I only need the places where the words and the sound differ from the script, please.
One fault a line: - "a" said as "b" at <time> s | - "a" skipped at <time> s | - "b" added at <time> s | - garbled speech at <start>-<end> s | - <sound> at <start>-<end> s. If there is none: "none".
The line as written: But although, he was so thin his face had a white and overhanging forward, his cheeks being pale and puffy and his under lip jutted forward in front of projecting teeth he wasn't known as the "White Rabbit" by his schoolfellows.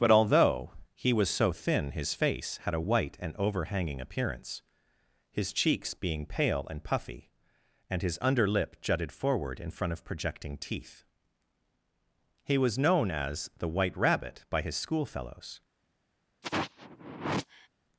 - "forward" said as "appearance" at 4.0 s
- "wasn't" said as "was" at 12.6 s
- sigh at 16.4-17.7 s